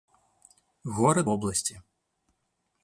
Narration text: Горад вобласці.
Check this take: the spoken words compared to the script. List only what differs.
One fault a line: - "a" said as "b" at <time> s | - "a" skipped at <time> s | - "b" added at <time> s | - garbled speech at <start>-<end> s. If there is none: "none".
none